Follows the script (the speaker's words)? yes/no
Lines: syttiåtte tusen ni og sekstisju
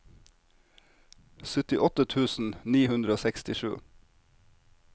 no